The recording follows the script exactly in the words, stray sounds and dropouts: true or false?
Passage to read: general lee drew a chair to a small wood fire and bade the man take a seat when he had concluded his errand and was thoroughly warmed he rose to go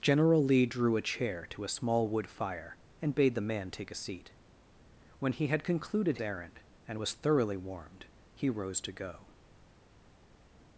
false